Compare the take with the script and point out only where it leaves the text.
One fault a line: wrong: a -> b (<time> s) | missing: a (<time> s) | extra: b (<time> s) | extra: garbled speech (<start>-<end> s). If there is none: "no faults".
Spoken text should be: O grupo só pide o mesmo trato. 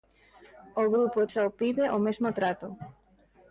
no faults